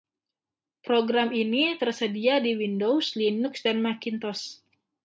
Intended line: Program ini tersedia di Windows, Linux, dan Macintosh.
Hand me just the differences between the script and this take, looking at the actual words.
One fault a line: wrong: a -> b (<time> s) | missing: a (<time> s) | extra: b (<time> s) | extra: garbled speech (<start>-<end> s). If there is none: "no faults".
no faults